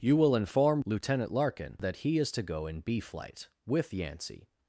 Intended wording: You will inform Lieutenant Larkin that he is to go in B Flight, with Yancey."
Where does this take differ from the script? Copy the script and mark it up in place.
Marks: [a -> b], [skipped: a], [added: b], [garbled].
You will inform Lieutenant Larkin that he is to go in B Flight, with Yancey."